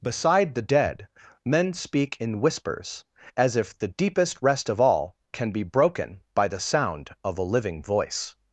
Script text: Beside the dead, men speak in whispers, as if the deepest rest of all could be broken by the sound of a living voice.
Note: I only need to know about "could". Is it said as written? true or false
false